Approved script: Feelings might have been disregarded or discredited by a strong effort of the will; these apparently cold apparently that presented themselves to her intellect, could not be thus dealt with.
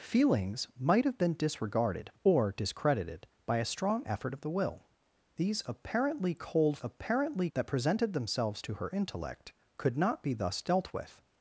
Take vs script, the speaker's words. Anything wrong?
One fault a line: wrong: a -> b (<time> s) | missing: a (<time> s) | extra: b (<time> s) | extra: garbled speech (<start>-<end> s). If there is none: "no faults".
no faults